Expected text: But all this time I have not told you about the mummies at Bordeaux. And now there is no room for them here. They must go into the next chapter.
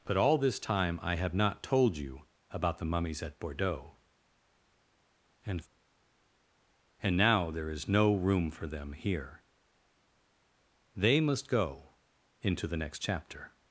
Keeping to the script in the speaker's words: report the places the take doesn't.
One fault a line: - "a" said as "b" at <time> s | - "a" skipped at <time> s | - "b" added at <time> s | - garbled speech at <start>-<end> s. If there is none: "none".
- "And" added at 7.0 s